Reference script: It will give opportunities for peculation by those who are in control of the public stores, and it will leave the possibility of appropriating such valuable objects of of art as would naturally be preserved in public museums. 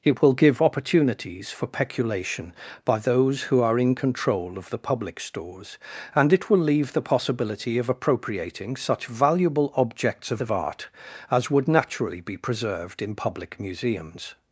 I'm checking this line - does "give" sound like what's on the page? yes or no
yes